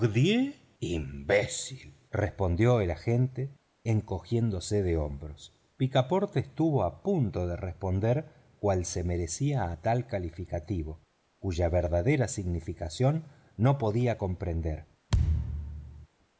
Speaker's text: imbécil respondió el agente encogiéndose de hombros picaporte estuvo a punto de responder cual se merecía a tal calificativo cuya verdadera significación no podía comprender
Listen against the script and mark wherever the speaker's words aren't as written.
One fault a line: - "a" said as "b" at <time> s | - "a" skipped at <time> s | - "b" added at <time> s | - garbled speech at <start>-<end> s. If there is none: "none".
none